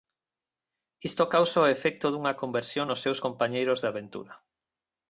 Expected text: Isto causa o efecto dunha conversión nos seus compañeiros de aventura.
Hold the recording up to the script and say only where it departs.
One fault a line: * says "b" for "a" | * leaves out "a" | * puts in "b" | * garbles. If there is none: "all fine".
all fine